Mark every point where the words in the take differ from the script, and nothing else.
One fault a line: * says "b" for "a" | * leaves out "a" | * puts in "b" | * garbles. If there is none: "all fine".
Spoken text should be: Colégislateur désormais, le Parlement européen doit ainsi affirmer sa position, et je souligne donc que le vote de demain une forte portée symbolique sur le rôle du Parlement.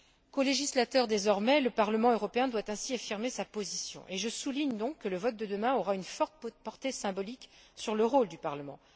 * puts in "aura"